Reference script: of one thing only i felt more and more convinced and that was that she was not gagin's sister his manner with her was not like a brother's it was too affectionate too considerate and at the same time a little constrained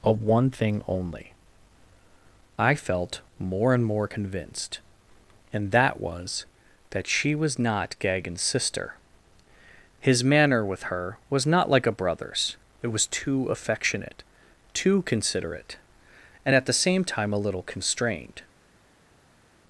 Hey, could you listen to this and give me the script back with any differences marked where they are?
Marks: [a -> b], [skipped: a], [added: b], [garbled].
of one thing only i felt more and more convinced and that was that she was not gagin's sister his manner with her was not like a brother's it was too affectionate too considerate and at the same time a little constrained